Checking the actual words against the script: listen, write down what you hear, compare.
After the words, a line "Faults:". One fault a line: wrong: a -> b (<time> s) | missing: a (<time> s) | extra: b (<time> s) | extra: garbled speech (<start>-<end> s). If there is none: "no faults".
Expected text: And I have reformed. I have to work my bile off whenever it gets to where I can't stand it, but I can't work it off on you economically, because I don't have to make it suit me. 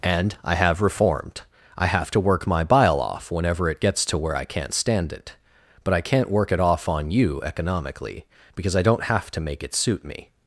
And I have reformed. I have to work my bile off whenever it gets to where I can't stand it, but I can't work it off on you economically, because I don't have to make it suit me.
Faults:
no faults